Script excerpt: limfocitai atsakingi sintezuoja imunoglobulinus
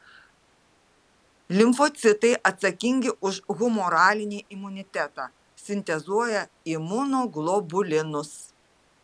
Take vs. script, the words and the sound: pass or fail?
fail